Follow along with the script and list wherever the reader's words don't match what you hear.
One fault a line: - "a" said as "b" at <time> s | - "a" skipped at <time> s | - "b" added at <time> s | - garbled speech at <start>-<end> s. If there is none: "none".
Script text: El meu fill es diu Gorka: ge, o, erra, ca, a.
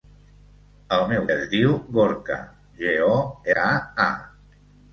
- "fill" skipped at 1.3 s
- "erra" skipped at 3.2 s